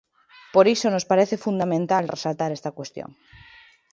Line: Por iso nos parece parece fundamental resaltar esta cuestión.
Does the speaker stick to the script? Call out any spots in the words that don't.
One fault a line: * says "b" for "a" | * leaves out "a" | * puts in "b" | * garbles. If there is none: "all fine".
* leaves out "parece"